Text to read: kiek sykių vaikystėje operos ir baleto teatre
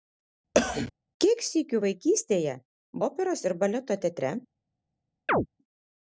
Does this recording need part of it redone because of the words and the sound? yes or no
yes